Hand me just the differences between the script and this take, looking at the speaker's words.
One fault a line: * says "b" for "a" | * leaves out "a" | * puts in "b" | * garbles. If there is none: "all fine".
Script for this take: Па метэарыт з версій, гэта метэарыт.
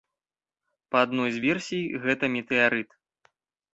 * says "адной" for "метэарыт"